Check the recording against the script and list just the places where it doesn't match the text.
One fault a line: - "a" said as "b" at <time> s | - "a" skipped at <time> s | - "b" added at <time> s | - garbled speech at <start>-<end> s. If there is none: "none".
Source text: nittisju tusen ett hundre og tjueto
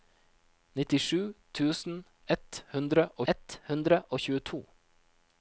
- "ett hundre og" added at 3.3 s